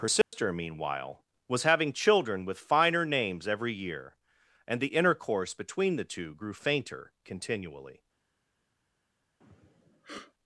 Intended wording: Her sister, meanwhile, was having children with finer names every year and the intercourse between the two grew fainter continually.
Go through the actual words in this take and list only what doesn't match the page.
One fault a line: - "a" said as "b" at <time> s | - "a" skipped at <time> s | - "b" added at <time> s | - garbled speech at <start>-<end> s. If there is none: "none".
none